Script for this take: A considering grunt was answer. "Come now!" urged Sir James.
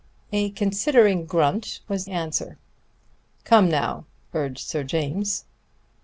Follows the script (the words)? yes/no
yes